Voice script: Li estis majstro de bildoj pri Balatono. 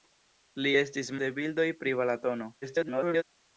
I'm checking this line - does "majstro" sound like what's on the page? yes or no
no